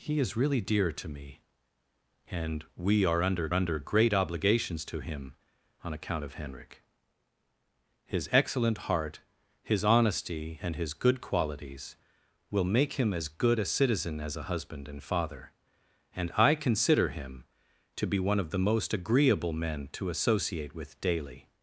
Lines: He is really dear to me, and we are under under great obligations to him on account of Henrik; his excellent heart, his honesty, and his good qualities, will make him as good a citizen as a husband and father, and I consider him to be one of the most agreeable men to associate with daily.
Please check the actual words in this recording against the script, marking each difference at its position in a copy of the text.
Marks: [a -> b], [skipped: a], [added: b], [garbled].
He is really dear to me, and we are under under great obligations to him on account of Henrik; his excellent heart, his honesty, and his good qualities, will make him as good a citizen as a husband and father, and I consider him to be one of the most agreeable men to associate with daily.